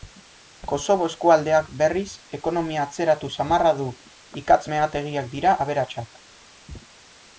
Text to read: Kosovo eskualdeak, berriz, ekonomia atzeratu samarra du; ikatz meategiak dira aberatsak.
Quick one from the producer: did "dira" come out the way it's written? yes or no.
yes